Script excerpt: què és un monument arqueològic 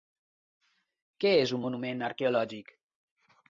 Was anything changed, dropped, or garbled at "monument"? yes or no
no